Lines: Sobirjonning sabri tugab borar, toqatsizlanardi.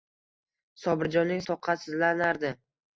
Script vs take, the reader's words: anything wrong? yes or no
yes